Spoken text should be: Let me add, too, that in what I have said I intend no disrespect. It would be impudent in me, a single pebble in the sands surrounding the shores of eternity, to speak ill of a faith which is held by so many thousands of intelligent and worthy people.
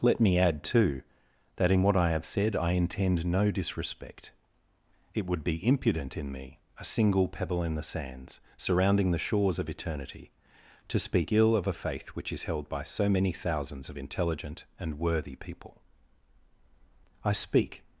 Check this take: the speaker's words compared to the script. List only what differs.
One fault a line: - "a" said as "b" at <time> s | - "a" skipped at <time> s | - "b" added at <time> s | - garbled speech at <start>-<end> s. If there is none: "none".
- "I speak" added at 17.2 s